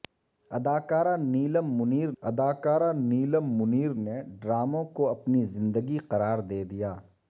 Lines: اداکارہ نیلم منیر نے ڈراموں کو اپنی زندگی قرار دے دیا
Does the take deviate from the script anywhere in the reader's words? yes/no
yes